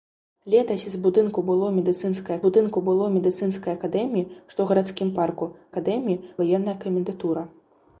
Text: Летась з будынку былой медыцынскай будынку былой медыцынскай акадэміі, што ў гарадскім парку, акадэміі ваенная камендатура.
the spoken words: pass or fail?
pass